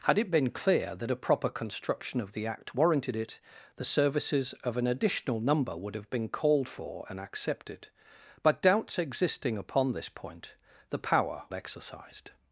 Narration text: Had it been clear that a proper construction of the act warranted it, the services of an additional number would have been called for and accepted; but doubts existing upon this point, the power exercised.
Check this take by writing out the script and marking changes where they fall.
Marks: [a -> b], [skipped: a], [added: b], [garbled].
Had it been clear that a proper construction of the act warranted it, the services of an additional number would have been called for and accepted; but doubts existing upon this point, the power exercised.